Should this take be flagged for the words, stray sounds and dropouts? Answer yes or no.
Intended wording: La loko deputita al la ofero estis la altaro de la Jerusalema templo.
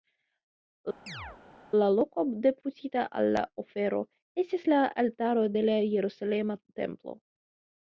yes